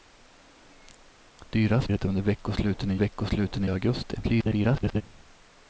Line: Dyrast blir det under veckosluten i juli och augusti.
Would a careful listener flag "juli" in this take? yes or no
yes